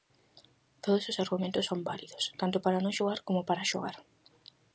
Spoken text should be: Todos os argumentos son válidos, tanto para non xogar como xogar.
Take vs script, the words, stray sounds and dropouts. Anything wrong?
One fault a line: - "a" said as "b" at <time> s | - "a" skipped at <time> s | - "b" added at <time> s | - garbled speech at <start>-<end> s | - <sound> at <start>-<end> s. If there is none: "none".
- "para" added at 3.5 s